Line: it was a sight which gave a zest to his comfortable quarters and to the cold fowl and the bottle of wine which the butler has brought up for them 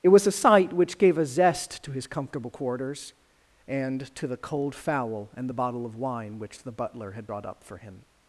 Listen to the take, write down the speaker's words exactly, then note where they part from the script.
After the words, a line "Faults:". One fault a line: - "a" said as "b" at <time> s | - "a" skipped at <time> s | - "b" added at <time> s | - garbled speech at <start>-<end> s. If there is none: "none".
it was a sight which gave a zest to his comfortable quarters and to the cold fowl and the bottle of wine which the butler had brought up for him
Faults:
- "has" said as "had" at 7.1 s
- "them" said as "him" at 7.8 s